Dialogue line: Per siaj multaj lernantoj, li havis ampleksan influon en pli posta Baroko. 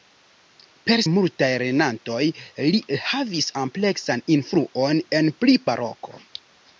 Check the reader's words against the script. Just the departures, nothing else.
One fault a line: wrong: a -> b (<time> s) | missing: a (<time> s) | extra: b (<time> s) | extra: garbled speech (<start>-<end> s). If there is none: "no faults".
missing: siaj (1.0 s)
missing: posta (5.6 s)